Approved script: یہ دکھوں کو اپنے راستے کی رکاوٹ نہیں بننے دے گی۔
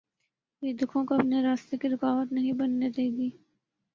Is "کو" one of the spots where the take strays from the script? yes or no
no